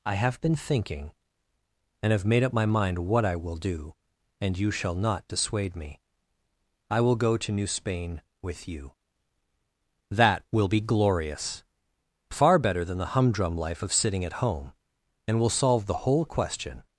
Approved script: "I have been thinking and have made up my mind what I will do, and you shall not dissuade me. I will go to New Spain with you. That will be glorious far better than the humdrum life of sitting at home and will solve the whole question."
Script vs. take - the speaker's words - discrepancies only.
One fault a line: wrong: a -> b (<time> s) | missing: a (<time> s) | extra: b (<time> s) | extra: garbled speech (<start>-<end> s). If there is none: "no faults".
no faults